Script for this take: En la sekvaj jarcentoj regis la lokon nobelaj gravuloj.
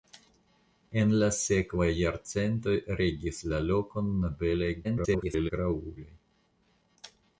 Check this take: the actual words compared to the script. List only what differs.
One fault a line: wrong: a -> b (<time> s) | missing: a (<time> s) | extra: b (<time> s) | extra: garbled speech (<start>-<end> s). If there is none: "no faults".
extra: garbled speech (4.8-5.5 s)